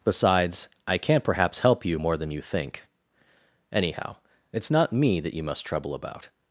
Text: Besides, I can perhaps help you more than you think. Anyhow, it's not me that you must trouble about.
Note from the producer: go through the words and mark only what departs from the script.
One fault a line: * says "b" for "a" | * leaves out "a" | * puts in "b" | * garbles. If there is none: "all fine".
* says "can't" for "can"